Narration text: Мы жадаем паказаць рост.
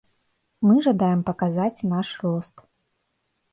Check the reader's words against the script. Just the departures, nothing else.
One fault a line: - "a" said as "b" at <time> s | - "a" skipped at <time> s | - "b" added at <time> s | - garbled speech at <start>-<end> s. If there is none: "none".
- "наш" added at 1.9 s